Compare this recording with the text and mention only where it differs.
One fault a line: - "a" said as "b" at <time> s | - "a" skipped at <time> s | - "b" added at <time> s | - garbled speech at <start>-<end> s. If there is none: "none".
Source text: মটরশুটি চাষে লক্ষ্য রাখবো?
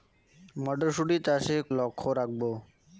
none